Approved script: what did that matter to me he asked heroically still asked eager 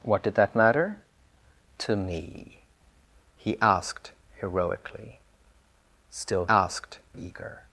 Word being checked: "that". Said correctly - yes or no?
yes